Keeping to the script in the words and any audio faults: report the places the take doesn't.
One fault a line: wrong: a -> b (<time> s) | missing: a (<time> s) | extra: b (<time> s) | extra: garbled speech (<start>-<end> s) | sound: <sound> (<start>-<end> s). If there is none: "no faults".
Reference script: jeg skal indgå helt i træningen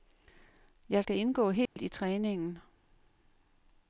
sound: dropout (1.7-1.8 s)